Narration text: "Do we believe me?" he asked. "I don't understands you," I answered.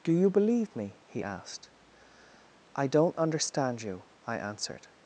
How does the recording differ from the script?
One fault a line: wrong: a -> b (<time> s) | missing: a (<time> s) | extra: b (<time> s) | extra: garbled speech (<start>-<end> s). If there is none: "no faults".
wrong: we -> you (0.1 s)
wrong: understands -> understand (3.2 s)